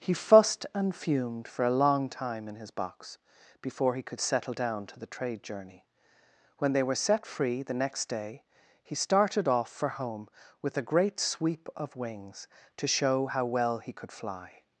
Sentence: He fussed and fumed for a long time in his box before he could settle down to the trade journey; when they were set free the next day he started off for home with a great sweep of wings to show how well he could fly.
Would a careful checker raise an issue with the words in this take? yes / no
no